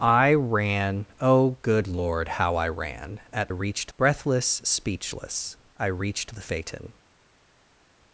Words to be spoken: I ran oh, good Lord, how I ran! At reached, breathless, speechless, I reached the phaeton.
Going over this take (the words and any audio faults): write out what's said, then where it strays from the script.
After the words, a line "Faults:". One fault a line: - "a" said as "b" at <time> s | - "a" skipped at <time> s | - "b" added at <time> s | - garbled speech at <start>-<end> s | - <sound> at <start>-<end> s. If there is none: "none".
I ran oh, good Lord, how I ran! At reached, breathless, speechless, I reached the phaeton.
Faults:
none